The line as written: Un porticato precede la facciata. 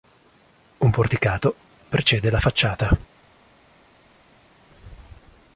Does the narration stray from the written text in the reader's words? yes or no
no